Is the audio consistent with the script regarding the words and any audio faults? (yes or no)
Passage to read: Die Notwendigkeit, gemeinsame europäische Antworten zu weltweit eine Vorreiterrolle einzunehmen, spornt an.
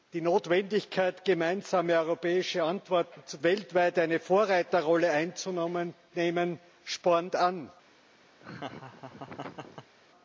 no